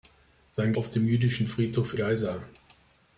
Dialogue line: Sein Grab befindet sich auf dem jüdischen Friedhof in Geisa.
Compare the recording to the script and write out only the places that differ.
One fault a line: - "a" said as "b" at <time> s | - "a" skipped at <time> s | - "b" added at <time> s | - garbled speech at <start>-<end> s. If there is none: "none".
- "Grab befindet sich" skipped at 0.7 s
- "in" skipped at 2.0 s